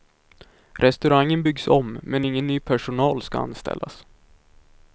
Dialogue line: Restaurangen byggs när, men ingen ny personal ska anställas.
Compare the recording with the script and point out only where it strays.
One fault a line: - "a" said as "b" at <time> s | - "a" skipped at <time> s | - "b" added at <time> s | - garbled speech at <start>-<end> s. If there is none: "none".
- "när" said as "om" at 1.7 s